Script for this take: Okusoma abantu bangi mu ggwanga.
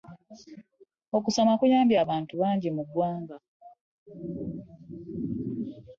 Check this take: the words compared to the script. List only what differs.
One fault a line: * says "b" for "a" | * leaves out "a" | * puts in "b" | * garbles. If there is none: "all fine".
* puts in "kuyambye"